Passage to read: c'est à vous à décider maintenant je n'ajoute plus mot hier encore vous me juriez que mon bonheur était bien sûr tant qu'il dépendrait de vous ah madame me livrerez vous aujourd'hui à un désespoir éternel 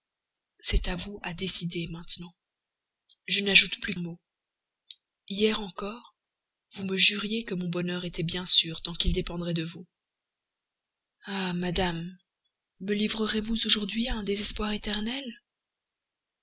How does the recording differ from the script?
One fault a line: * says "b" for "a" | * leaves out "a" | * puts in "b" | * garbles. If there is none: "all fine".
all fine